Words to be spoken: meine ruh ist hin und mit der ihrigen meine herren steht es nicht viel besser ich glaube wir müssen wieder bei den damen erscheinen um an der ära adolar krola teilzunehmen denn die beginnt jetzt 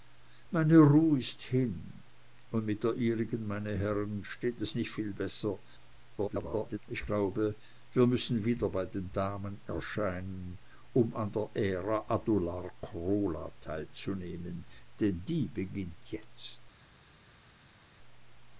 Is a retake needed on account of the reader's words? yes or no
yes